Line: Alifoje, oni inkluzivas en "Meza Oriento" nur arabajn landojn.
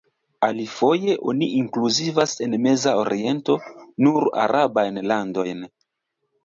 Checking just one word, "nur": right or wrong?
right